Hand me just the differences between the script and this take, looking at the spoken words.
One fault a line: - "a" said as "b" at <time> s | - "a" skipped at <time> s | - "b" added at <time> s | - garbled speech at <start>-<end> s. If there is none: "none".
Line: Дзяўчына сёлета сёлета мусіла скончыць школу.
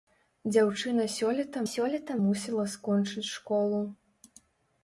none